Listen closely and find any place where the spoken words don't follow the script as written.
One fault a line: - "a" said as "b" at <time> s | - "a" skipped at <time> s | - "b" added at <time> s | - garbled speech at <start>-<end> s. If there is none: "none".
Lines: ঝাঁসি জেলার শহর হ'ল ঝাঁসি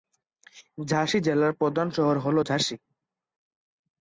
- "প্রধান" added at 1.5 s